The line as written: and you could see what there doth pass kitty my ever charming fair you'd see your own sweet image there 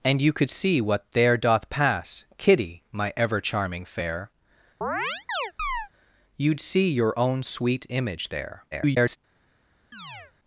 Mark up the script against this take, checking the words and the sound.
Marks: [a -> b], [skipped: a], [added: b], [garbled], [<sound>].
and you could see what there doth pass kitty my ever charming fair [chirp] you'd see your own sweet image there [garbled] [chirp]